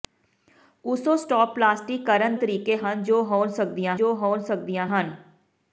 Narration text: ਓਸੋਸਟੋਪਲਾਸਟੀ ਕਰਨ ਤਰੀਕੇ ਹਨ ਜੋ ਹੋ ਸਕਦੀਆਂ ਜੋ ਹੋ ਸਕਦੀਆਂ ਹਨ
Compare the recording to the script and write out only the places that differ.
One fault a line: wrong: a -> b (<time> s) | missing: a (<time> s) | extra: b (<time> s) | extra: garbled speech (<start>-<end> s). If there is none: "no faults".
no faults